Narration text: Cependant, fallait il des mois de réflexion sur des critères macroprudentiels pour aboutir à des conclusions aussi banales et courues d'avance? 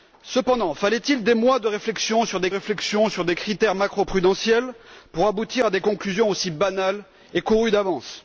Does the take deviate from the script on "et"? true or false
false